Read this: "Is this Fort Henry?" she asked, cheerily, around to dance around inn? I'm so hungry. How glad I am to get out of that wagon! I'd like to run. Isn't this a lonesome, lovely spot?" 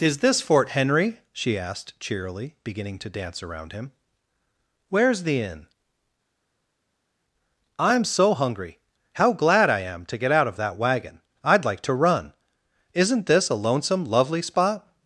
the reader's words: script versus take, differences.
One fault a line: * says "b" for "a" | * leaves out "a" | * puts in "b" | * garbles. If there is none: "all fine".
* says "beginning" for "around"
* puts in "him Where's the"